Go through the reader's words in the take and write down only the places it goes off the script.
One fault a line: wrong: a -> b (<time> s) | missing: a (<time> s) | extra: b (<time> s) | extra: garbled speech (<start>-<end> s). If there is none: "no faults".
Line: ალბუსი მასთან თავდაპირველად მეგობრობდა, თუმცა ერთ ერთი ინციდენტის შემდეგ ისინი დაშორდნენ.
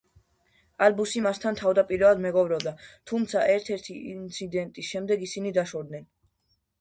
no faults